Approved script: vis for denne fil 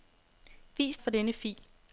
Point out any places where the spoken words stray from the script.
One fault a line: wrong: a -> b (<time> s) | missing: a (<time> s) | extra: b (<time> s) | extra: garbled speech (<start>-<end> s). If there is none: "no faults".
no faults